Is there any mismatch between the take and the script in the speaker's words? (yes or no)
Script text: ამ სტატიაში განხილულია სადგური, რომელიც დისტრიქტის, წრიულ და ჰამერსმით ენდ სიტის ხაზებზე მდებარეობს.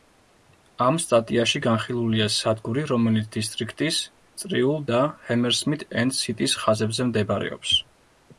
no